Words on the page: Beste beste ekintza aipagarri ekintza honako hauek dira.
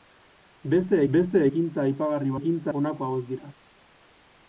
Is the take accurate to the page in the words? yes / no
yes